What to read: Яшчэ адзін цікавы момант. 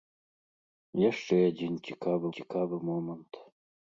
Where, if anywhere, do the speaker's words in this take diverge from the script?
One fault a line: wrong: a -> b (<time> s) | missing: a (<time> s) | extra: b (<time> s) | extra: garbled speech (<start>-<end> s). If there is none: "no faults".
extra: цікавы (2.4 s)